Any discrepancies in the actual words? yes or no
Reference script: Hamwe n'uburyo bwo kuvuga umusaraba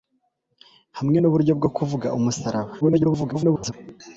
yes